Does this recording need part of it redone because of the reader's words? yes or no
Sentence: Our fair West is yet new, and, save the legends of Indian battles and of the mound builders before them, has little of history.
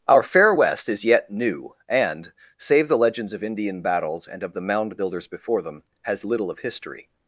no